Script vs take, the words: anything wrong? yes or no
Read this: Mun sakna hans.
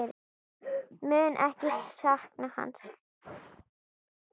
yes